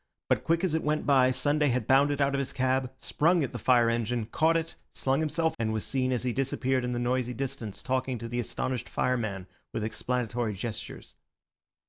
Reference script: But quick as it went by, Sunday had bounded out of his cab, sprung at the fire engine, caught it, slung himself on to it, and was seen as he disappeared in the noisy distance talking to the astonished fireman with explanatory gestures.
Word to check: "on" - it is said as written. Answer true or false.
false